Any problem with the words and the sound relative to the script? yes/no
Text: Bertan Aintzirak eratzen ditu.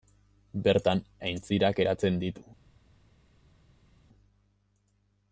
no